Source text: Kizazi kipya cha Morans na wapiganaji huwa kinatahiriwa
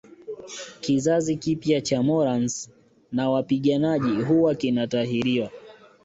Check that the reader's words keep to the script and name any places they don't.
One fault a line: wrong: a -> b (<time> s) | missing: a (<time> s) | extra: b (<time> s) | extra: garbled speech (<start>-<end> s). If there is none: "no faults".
no faults